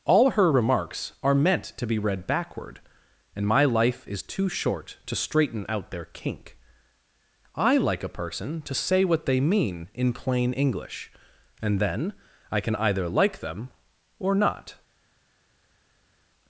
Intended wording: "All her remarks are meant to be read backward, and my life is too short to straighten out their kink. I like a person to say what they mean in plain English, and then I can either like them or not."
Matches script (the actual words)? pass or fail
pass